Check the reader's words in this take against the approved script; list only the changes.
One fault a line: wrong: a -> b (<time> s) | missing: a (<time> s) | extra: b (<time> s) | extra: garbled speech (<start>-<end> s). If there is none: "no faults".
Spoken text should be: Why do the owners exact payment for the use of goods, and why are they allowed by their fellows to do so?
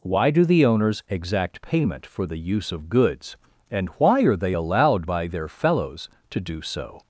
no faults